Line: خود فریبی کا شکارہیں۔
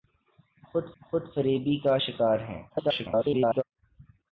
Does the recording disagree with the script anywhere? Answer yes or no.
yes